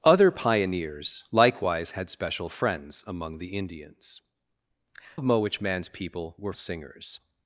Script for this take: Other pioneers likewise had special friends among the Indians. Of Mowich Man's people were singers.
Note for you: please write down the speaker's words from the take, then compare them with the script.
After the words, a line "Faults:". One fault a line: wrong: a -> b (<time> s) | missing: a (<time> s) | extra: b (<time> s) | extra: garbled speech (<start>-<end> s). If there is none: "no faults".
Other pioneers likewise had special friends among the Indians. Of Mowich Man's people were singers.
Faults:
no faults